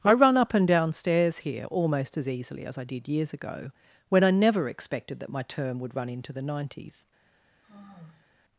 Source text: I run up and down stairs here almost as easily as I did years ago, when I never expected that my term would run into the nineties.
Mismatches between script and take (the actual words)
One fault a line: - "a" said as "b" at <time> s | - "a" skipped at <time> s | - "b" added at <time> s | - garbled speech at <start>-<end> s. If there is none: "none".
none